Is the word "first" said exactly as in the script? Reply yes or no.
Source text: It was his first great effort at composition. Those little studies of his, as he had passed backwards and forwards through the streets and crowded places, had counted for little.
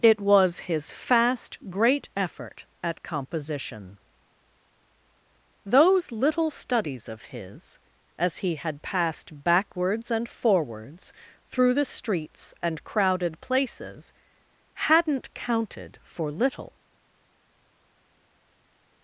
no